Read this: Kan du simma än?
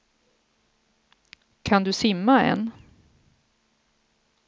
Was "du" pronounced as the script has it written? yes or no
yes